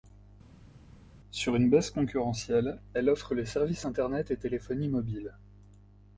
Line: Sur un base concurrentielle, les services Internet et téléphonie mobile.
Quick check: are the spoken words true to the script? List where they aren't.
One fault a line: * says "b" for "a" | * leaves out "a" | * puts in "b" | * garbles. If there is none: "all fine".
* says "une" for "un"
* puts in "elle offre"